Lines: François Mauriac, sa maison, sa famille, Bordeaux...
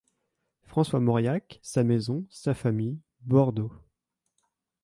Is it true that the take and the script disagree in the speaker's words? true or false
false